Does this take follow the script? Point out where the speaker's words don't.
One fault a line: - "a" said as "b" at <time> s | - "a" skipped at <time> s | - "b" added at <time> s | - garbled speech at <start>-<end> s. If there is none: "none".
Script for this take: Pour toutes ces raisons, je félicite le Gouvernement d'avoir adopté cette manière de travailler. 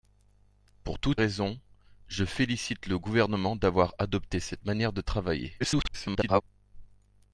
- "ces" skipped at 1.2 s
- garbled speech at 5.6-6.4 s